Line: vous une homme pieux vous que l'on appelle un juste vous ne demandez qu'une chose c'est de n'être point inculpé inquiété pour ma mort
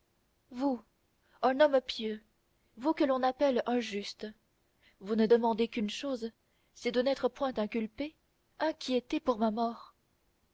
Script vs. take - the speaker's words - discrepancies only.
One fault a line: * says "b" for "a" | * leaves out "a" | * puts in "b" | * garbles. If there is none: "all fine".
* says "un" for "une"